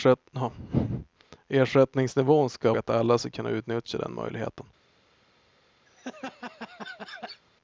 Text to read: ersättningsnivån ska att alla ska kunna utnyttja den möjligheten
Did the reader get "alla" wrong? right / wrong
right